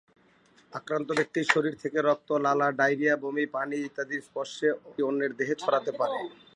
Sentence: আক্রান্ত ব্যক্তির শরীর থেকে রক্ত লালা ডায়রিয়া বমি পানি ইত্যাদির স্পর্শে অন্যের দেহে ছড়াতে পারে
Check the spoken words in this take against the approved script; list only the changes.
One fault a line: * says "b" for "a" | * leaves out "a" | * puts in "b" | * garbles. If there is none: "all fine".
all fine